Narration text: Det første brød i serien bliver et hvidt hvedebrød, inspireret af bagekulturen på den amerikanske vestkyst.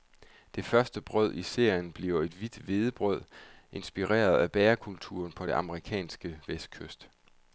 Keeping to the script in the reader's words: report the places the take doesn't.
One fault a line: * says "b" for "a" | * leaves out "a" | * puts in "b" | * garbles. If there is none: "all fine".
all fine